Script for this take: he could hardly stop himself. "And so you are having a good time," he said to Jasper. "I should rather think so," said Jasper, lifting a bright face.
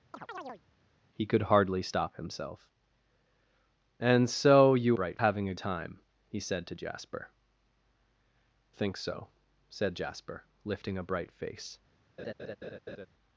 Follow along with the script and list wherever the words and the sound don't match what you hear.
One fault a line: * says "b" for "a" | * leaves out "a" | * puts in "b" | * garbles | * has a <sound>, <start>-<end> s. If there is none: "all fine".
* has a chirp, 0.1-0.6 s
* says "bright" for "are"
* leaves out "good"
* leaves out "I should rather"
* has a laugh, 12.2-13.1 s